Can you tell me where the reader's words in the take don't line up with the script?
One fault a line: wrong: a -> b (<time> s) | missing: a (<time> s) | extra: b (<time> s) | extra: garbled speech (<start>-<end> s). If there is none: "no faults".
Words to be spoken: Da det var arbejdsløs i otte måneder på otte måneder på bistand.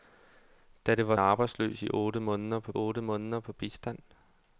no faults